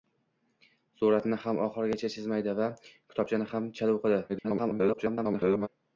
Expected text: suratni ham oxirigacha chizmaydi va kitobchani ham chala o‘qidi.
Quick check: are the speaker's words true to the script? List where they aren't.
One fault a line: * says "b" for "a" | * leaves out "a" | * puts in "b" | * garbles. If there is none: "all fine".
* garbles